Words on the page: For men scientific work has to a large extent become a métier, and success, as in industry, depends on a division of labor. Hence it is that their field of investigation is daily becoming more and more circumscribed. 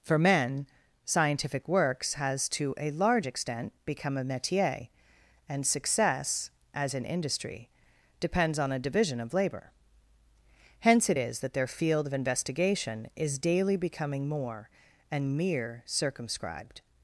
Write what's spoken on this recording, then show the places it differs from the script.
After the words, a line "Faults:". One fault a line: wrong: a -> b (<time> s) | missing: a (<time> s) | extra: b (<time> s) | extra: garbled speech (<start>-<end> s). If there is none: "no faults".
For men scientific works has to a large extent become a métier, and success, as in industry, depends on a division of labor. Hence it is that their field of investigation is daily becoming more and mere circumscribed.
Faults:
wrong: work -> works (1.7 s)
wrong: more -> mere (15.4 s)